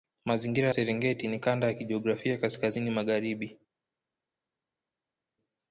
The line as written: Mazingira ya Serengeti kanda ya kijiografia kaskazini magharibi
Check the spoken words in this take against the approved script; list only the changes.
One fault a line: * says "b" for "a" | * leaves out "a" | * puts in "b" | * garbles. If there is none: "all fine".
* puts in "ni"